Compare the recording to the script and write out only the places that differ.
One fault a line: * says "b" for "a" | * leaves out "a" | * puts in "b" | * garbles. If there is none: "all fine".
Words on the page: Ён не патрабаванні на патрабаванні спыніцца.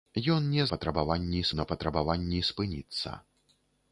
all fine